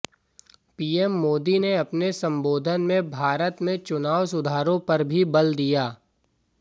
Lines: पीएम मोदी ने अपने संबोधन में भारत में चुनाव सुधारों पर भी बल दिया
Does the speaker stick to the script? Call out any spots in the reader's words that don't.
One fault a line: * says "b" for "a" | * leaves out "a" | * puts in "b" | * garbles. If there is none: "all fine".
all fine